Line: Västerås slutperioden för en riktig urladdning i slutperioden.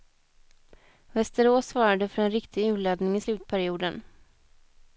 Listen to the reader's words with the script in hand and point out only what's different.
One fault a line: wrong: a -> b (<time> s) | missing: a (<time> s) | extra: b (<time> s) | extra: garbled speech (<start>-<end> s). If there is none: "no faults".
wrong: slutperioden -> svarade (1.7 s)